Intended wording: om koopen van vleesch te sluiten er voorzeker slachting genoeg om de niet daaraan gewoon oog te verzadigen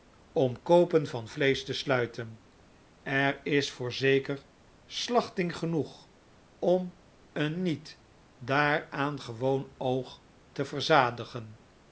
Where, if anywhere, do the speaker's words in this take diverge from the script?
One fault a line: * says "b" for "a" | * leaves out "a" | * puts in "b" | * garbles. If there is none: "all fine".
* puts in "is"
* says "een" for "de"